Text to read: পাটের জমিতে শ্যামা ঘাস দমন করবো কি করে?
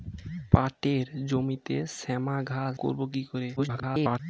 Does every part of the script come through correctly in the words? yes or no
no